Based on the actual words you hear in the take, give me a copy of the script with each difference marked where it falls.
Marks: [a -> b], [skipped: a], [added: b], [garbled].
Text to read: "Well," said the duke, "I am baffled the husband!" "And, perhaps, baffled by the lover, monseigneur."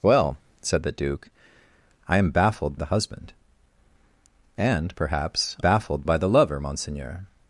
"Well," said the duke, "I am baffled the husband!" "And, perhaps, baffled by the lover, monseigneur."